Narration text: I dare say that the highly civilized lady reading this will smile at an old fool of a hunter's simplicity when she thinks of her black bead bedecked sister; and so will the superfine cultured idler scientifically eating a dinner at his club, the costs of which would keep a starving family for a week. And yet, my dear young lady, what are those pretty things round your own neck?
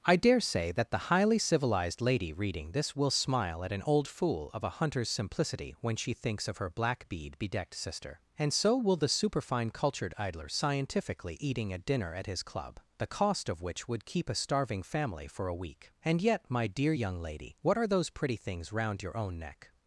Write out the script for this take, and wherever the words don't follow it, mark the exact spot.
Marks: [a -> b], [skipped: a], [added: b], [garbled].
I dare say that the highly civilized lady reading this will smile at an old fool of a hunter's simplicity when she thinks of her black bead bedecked sister; and so will the superfine cultured idler scientifically eating a dinner at his club, the [costs -> cost] of which would keep a starving family for a week. And yet, my dear young lady, what are those pretty things round your own neck?